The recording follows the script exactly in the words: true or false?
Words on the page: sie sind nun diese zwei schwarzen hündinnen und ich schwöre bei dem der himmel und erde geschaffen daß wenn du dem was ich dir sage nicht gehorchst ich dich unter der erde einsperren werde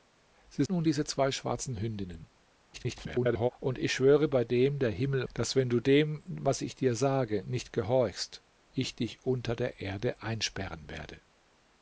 false